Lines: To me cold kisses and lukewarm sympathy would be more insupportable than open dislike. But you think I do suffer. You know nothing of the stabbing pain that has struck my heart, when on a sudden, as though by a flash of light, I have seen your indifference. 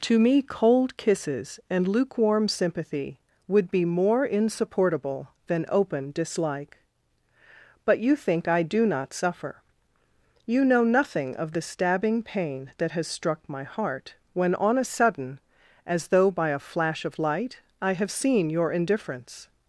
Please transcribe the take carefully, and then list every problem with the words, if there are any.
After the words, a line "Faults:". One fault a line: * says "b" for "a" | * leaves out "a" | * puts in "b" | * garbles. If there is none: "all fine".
To me cold kisses and lukewarm sympathy would be more insupportable than open dislike. But you think I do not suffer. You know nothing of the stabbing pain that has struck my heart, when on a sudden, as though by a flash of light, I have seen your indifference.
Faults:
* puts in "not"